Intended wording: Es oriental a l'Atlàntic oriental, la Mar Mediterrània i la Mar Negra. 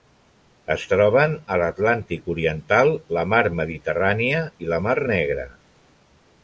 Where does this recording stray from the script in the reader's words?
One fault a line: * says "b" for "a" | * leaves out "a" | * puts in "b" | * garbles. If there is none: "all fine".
* says "troben" for "oriental"